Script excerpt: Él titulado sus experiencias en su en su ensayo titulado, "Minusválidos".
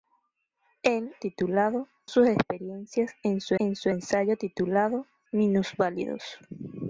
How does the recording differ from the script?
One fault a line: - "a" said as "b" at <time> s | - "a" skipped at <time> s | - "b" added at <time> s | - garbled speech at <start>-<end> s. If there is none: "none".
none